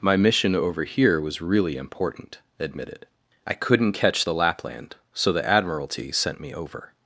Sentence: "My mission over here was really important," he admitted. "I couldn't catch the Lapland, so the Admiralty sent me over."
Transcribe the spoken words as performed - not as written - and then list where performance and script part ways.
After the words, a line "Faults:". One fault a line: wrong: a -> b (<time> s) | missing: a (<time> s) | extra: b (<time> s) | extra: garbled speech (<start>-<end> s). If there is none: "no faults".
"My mission over here was really important," admitted. "I couldn't catch the Lapland, so the Admiralty sent me over."
Faults:
missing: he (2.4 s)